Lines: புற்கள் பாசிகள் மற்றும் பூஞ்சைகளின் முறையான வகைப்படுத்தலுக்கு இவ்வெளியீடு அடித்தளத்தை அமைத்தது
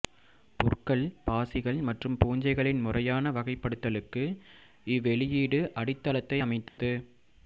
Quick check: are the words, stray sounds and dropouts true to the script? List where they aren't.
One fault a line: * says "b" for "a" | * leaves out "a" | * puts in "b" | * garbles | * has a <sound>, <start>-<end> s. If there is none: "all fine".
* has a dropout, 6.7-6.8 s